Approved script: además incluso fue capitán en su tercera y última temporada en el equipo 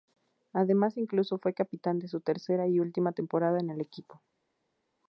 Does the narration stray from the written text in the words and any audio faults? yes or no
no